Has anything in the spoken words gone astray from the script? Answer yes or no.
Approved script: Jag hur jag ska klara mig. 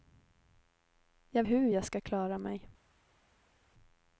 no